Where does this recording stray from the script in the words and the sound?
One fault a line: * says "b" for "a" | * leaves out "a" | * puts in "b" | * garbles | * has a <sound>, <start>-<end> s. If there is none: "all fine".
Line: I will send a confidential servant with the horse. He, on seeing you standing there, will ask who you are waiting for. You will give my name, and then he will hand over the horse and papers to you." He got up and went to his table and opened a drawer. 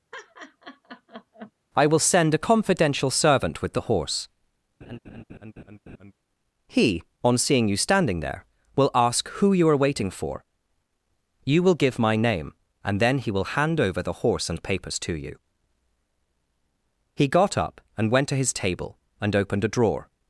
* has a laugh, 0.1-1.5 s
* has a laugh, 4.8-6.1 s